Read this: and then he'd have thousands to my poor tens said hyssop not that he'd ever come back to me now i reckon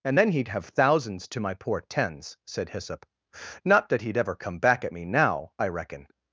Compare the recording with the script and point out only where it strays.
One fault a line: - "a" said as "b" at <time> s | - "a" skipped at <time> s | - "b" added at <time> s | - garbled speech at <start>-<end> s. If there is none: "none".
- "to" said as "at" at 4.8 s